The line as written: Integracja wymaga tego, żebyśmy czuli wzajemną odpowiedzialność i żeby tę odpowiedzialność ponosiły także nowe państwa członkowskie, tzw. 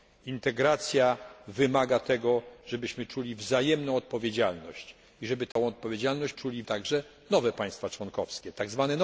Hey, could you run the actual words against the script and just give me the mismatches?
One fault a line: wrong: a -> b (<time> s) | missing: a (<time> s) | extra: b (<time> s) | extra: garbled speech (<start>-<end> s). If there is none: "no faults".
wrong: ponosiły -> czuli (6.3 s)